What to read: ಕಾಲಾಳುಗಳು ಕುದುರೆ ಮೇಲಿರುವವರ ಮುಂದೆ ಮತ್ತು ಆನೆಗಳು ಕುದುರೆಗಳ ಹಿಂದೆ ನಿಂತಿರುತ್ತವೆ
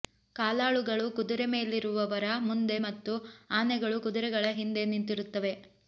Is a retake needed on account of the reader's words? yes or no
no